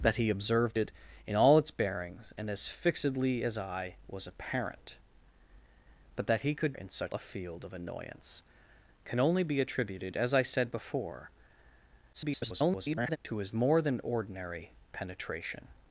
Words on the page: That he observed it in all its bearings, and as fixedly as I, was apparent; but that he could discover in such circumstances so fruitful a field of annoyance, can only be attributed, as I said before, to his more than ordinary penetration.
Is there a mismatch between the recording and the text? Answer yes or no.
yes